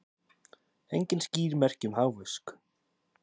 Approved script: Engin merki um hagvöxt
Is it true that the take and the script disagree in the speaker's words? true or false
true